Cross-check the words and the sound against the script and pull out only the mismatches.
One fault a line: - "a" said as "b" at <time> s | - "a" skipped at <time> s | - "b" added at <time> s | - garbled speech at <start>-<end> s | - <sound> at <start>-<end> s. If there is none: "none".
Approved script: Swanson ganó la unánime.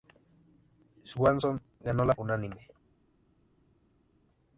none